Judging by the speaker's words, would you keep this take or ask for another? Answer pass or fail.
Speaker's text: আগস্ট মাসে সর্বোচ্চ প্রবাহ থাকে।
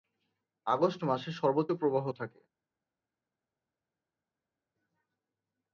pass